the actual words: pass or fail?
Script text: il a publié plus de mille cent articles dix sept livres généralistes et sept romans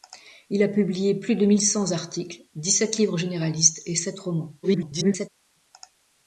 fail